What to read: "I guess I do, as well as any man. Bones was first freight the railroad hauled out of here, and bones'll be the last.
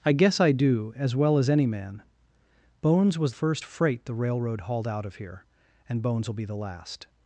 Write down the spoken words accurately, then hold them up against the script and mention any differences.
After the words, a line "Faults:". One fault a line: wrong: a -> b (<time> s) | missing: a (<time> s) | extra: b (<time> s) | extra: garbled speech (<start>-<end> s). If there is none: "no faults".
"I guess I do, as well as any man. Bones was first freight the railroad hauled out of here, and bones'll be the last.
Faults:
no faults